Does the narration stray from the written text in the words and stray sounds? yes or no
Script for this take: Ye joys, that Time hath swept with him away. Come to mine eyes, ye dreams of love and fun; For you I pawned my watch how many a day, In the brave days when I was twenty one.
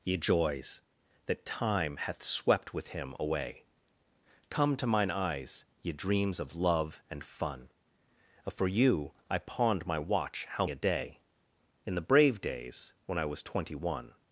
yes